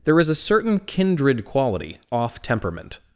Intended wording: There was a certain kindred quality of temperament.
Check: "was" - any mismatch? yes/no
yes